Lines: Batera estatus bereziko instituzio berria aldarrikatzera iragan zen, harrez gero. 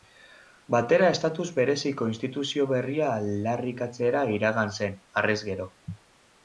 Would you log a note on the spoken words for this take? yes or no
no